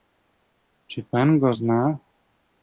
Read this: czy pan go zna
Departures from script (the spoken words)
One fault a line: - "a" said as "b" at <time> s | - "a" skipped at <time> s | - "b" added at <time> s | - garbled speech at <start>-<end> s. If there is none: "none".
none